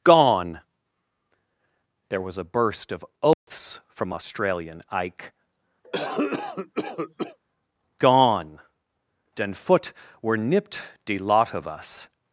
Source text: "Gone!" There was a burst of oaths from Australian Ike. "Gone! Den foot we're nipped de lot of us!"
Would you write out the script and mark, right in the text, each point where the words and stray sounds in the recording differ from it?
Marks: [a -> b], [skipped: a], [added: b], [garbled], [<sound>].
"Gone!" There was a burst of oaths [dropout] from Australian Ike. [cough] "Gone! Den foot we're nipped de lot of us!"